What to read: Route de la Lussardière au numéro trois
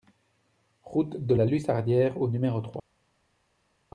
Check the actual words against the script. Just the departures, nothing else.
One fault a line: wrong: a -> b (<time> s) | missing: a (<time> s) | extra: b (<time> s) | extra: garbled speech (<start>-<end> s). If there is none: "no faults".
no faults